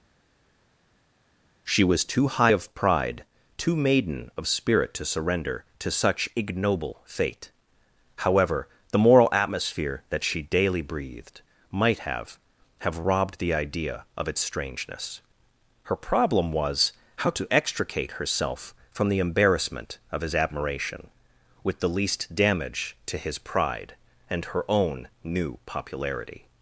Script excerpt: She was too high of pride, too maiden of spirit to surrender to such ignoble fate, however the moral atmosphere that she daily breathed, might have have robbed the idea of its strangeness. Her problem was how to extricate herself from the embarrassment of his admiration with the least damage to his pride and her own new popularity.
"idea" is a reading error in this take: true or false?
false